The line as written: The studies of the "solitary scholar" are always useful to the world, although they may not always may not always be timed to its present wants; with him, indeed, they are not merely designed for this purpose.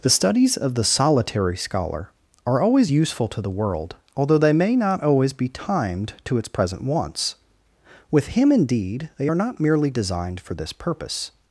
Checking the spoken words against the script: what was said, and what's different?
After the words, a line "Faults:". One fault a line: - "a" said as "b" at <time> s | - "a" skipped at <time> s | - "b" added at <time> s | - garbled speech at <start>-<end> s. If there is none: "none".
The studies of the "solitary scholar" are always useful to the world, although they may not always be timed to its present wants; with him, indeed, they are not merely designed for this purpose.
Faults:
- "may not always" skipped at 5.3 s